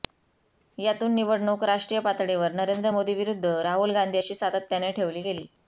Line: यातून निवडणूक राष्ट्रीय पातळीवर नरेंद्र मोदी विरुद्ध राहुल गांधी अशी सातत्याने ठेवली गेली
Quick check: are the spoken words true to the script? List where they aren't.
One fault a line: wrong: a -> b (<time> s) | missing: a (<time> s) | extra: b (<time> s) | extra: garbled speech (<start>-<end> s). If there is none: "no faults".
no faults